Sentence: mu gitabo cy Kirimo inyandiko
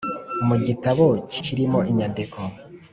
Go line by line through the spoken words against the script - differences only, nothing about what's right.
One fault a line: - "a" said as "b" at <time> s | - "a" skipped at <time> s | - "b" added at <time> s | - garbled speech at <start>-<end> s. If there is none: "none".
none